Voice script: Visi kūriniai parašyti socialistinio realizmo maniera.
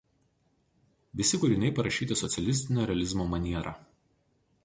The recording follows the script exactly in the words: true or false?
true